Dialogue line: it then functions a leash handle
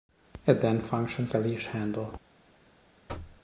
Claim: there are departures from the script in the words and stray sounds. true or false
true